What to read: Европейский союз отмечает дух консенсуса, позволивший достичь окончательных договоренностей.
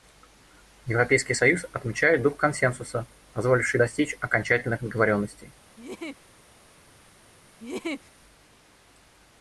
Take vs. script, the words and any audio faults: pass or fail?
fail